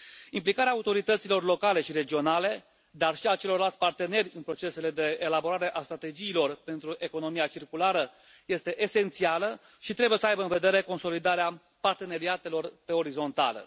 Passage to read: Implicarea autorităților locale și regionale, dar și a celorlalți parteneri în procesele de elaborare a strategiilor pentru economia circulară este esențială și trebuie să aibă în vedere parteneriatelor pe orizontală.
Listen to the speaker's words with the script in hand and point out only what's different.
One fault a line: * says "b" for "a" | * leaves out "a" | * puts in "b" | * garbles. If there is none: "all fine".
* puts in "consolidarea"